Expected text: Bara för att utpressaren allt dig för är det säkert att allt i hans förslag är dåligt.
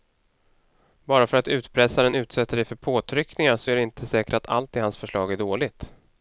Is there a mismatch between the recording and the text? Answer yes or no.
yes